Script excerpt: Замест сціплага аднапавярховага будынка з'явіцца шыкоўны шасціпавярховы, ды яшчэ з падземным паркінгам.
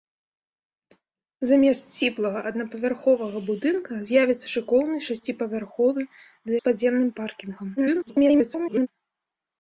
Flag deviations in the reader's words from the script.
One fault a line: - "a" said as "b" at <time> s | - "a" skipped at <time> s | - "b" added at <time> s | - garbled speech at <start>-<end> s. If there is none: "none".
- "яшчэ" skipped at 6.5 s
- garbled speech at 7.8-8.9 s